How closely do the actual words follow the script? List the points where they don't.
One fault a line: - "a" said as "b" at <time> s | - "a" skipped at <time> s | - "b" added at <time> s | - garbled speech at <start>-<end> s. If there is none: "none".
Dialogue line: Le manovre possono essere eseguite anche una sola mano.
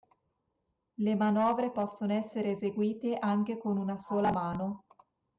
- "con" added at 3.6 s